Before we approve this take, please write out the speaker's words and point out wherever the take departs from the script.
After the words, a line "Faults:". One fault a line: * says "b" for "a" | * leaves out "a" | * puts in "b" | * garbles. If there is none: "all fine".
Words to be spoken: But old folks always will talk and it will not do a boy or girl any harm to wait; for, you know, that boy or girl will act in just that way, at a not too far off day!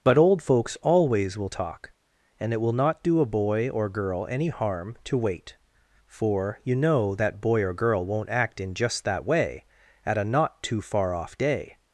But old folks always will talk and it will not do a boy or girl any harm to wait; for, you know, that boy or girl won't act in just that way, at a not too far off day!
Faults:
* says "won't" for "will"